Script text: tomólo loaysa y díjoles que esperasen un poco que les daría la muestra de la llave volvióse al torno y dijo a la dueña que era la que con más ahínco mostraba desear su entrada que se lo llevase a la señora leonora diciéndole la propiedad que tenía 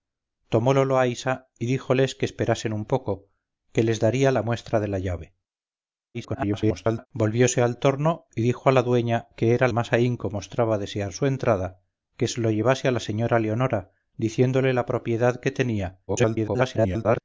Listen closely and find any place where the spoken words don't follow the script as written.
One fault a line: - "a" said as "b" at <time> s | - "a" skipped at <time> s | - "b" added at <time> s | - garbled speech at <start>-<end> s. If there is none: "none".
- garbled speech at 6.1-7.1 s
- "la que con" skipped at 9.7 s
- garbled speech at 16.1-17.2 s